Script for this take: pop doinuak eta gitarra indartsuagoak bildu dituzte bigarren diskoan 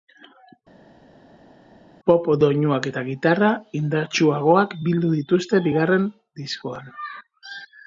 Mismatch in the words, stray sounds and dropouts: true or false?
false